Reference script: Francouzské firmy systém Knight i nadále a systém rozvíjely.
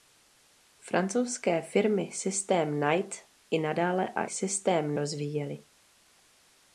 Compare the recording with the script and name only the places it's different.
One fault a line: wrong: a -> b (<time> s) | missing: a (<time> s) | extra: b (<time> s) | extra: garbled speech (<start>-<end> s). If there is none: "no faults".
no faults